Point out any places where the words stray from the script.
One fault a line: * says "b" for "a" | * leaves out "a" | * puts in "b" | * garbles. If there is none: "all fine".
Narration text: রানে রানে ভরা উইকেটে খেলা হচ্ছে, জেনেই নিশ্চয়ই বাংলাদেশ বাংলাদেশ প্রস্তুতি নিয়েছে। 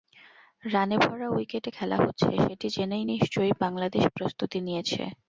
* leaves out "রানে"
* puts in "সেটি"
* leaves out "বাংলাদেশ"